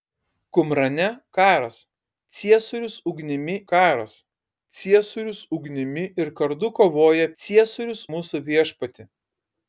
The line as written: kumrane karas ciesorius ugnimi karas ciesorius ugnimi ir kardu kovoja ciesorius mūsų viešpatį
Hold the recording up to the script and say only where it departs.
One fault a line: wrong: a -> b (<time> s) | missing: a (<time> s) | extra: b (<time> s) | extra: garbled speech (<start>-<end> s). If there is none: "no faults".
no faults